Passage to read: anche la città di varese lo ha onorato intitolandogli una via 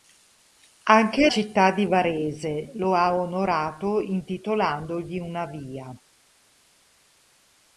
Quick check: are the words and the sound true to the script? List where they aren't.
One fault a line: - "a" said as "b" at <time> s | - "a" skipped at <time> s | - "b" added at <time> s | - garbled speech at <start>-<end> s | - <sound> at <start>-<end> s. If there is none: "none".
- "la" skipped at 1.3 s